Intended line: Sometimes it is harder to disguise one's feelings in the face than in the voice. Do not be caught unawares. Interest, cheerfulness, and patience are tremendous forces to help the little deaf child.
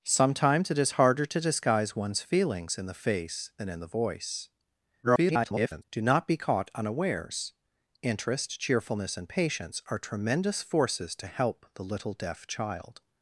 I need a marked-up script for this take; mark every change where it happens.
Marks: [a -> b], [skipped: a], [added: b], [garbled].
Sometimes it is harder to disguise one's feelings in the face than in the voice. [garbled] Do not be caught unawares. Interest, cheerfulness, and patience are tremendous forces to help the little deaf child.